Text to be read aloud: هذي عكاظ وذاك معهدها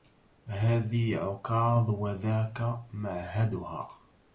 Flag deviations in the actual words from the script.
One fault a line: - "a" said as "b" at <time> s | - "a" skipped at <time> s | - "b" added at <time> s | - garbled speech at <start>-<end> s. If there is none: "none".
none